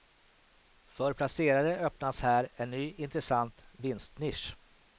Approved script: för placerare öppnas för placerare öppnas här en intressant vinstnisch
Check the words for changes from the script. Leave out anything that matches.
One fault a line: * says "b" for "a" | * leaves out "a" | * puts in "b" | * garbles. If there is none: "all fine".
* leaves out "för placerare öppnas"
* puts in "ny"